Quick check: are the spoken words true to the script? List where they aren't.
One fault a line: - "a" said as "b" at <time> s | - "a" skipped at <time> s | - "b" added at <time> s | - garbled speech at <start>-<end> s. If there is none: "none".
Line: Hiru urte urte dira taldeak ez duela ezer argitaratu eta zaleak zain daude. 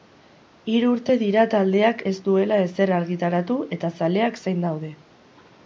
- "urte" skipped at 1.1 s